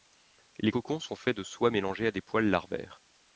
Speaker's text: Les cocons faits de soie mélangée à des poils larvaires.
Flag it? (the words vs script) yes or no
yes